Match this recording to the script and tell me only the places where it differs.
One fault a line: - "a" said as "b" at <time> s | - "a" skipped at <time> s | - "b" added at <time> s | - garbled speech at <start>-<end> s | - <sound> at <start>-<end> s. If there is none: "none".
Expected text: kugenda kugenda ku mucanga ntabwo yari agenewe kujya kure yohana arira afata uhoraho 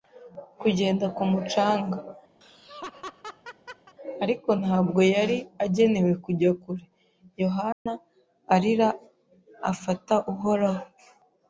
- "kugenda" skipped at 1.1 s
- laugh at 2.4-3.9 s
- "ariko" added at 4.2 s
- dropout at 7.7-7.9 s